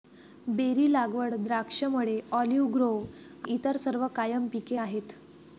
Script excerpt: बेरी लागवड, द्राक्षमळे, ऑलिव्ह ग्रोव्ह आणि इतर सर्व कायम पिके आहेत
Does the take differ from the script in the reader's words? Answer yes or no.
yes